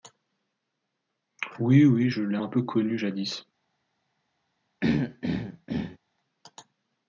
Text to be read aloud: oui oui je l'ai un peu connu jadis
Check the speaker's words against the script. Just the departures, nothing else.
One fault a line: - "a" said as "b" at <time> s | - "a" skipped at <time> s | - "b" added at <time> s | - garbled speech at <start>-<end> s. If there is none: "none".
none